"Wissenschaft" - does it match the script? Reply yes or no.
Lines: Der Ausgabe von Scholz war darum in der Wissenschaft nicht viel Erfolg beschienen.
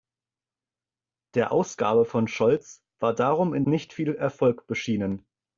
no